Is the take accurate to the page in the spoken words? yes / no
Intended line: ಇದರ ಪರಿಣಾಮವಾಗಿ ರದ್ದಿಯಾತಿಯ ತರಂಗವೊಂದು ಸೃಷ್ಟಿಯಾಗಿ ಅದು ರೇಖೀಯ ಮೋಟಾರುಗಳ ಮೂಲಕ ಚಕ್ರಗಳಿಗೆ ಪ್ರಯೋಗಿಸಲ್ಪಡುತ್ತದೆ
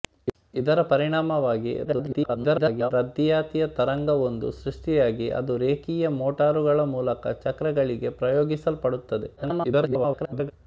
no